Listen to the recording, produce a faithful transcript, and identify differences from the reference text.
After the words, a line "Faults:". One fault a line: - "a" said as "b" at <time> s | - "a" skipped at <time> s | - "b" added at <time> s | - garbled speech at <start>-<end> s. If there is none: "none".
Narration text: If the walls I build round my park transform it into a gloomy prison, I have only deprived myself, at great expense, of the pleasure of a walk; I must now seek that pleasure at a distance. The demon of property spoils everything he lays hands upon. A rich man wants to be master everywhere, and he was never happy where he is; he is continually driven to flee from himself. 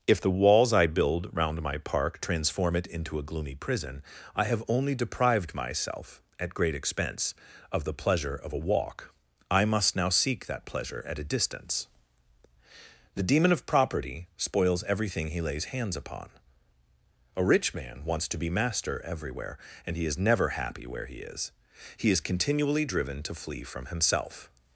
If the walls I build round my park transform it into a gloomy prison, I have only deprived myself, at great expense, of the pleasure of a walk; I must now seek that pleasure at a distance. The demon of property spoils everything he lays hands upon. A rich man wants to be master everywhere, and he is never happy where he is; he is continually driven to flee from himself.
Faults:
- "was" said as "is" at 20.1 s